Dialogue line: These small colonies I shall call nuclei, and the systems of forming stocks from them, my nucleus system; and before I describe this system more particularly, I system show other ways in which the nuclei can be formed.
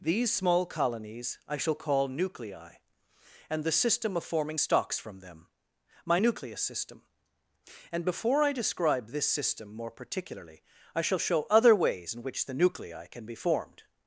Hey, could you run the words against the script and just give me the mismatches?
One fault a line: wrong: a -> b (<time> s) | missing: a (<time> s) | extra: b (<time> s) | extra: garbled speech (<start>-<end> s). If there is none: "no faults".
wrong: systems -> system (3.7 s)
wrong: system -> shall (11.0 s)